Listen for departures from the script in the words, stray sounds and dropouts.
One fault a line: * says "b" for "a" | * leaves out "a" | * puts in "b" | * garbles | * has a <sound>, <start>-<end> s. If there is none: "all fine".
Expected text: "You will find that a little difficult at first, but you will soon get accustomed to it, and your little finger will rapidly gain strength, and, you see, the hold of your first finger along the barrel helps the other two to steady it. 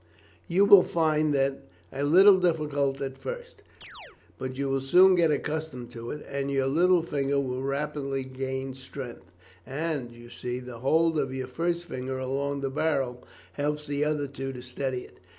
* has a chirp, 3.8-4.2 s